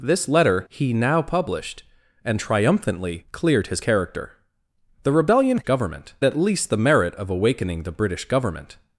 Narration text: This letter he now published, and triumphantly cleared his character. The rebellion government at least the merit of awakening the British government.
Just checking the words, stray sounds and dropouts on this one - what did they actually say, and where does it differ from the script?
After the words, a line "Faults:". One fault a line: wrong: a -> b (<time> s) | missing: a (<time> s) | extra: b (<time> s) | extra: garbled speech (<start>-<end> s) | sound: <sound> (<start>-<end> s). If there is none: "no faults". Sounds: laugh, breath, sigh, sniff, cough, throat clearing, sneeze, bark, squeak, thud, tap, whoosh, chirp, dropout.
This letter he now published, and triumphantly cleared his character. The rebellion government at least the merit of awakening the British government.
Faults:
no faults